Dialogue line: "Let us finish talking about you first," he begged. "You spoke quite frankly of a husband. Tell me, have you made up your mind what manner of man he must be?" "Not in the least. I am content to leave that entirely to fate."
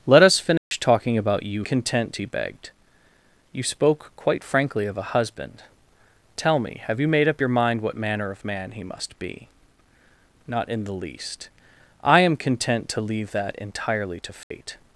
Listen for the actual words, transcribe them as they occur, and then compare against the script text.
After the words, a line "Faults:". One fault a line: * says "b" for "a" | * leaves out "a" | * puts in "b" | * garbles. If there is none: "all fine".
"Let us finish talking about you content," he begged. "You spoke quite frankly of a husband. Tell me, have you made up your mind what manner of man he must be?" "Not in the least. I am content to leave that entirely to fate."
Faults:
* says "content" for "first"